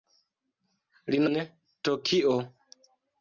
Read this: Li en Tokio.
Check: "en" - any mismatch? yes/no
no